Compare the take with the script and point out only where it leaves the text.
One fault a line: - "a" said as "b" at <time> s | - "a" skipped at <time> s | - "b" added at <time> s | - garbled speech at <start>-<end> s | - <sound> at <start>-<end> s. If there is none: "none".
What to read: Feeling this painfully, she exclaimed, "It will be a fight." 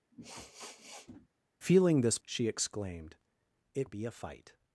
- sniff at 0.1-1.3 s
- "painfully" skipped at 2.2 s
- "will" skipped at 3.9 s